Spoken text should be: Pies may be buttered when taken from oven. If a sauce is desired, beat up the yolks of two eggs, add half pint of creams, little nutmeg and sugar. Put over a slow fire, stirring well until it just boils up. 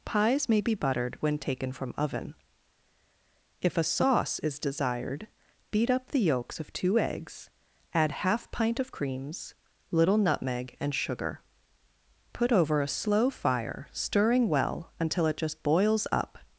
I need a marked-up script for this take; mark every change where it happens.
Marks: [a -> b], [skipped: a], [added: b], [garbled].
Pies may be buttered when taken from oven. If a sauce is desired, beat up the yolks of two eggs, add half pint of creams, little nutmeg and sugar. Put over a slow fire, stirring well until it just boils up.